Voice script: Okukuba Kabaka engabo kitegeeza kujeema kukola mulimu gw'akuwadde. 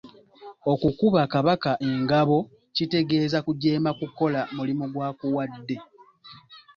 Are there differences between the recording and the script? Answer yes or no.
no